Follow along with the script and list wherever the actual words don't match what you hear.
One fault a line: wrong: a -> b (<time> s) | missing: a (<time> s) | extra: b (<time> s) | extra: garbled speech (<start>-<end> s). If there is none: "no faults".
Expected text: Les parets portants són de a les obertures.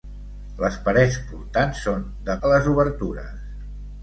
no faults